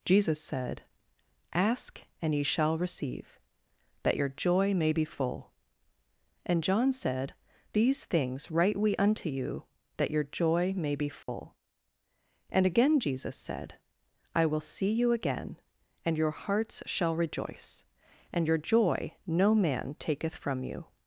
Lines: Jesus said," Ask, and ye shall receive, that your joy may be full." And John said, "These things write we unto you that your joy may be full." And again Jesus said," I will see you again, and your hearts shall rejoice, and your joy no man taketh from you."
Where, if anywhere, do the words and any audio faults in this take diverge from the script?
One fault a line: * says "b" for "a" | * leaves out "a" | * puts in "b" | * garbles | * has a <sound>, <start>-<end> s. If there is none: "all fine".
* has a dropout, 11.2-11.3 s